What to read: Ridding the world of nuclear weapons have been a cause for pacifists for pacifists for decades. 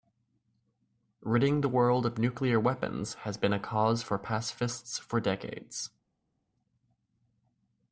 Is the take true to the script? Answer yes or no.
no